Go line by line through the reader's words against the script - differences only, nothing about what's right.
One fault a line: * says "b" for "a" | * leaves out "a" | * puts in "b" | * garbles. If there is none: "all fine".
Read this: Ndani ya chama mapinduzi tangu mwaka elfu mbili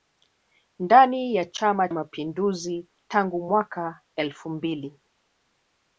all fine